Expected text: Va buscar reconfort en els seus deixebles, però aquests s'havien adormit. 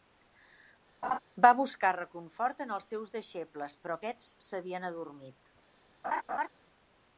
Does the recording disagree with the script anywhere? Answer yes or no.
no